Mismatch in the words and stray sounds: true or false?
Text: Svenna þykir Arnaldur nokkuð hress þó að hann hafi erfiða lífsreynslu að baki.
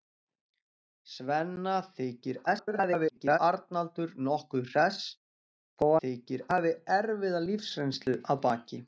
true